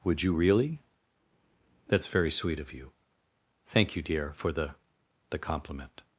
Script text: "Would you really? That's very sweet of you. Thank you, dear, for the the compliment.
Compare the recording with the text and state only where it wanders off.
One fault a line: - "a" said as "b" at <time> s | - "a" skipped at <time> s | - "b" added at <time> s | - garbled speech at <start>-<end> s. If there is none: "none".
none